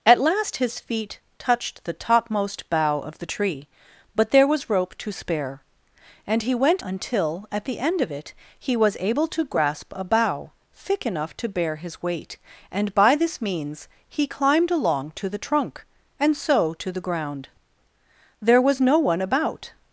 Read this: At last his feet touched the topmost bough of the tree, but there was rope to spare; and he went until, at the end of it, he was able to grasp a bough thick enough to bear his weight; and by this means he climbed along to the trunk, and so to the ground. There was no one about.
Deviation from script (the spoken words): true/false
false